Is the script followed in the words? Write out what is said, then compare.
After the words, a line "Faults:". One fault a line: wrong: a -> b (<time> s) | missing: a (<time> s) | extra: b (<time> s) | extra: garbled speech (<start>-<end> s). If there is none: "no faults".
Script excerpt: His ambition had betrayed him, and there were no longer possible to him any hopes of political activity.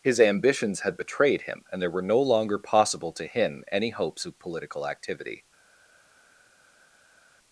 His ambitions had betrayed him, and there were no longer possible to him any hopes of political activity.
Faults:
wrong: ambition -> ambitions (0.2 s)